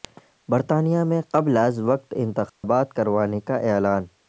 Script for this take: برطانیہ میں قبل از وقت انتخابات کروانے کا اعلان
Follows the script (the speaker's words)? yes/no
yes